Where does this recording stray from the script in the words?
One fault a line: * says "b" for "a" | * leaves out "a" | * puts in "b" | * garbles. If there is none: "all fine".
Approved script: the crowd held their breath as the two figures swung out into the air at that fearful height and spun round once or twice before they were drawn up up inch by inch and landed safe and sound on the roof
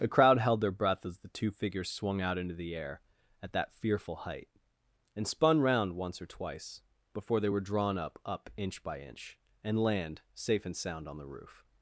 * says "land" for "landed"